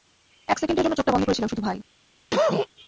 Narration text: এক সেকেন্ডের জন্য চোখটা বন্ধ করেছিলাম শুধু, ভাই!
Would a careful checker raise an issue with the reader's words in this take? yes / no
no